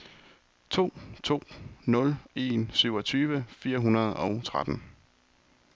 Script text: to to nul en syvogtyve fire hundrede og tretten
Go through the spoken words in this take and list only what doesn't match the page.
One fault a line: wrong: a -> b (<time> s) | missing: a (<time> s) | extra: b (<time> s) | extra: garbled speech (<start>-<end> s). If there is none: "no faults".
no faults